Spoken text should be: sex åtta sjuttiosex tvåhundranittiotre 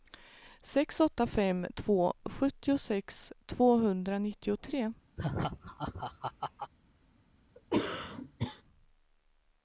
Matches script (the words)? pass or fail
fail